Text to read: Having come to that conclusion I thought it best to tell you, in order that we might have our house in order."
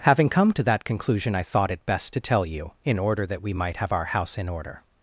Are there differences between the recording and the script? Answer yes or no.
no